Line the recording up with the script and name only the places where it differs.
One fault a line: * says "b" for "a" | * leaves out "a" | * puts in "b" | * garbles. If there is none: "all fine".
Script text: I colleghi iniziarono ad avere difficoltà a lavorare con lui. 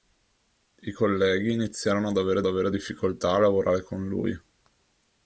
* puts in "avere"